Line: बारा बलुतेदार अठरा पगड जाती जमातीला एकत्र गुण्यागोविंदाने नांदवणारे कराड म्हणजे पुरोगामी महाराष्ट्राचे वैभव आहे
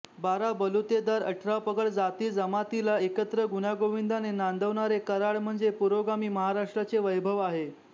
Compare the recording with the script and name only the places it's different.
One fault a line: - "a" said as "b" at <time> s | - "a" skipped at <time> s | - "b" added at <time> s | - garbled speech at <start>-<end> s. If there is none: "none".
none